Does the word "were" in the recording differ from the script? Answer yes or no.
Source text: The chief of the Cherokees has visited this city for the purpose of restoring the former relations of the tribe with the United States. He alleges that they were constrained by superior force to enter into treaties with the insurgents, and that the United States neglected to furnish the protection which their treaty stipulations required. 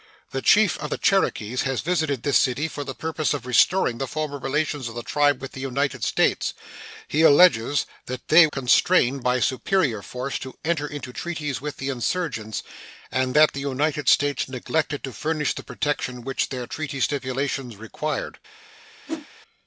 yes